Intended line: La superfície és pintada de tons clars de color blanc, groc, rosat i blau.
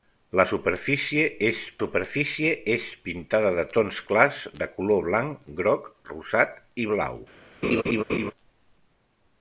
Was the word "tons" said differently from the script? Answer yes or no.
no